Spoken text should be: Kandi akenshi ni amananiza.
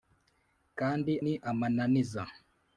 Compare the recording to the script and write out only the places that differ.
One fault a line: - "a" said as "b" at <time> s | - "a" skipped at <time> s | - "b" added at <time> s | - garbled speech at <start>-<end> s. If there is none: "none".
- "akenshi" skipped at 1.1 s